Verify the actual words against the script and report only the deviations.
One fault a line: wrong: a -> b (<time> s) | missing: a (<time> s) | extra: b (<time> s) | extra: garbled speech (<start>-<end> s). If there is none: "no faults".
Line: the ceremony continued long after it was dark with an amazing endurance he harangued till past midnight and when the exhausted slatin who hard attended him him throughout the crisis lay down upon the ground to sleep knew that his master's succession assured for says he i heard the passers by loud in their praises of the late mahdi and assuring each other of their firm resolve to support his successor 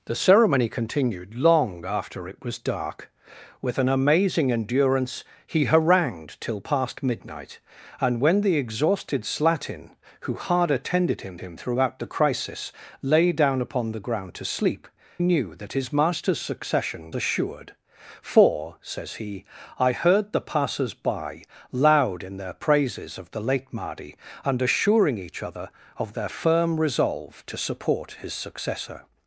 no faults